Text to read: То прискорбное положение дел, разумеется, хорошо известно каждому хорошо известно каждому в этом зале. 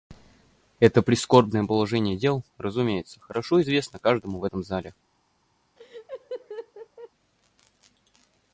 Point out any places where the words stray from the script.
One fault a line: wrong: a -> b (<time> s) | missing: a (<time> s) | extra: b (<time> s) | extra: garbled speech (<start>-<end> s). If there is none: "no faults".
wrong: То -> Это (0.8 s)
missing: хорошо известно каждому (4.4 s)